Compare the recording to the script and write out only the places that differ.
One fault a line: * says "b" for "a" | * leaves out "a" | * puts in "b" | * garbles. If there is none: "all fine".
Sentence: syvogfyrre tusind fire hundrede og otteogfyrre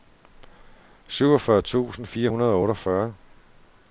all fine